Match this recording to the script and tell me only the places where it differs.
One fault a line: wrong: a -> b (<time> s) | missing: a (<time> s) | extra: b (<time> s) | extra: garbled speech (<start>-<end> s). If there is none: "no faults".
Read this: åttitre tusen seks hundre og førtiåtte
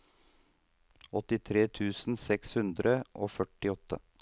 no faults